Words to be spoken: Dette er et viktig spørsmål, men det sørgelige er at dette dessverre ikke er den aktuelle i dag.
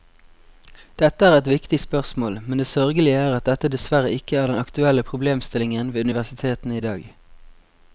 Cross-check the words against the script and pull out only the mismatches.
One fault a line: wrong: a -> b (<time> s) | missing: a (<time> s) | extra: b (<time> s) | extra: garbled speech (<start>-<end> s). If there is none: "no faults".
extra: problemstillingen ved universitetene (5.1 s)